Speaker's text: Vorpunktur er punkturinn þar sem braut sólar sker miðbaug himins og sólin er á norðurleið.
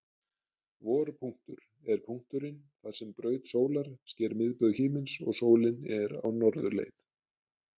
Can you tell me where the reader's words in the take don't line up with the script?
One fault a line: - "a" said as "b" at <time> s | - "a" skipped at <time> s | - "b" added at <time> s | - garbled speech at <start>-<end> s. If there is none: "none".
none